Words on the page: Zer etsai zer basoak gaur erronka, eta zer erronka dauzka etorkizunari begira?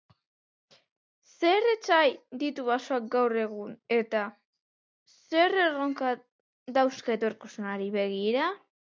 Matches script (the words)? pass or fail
fail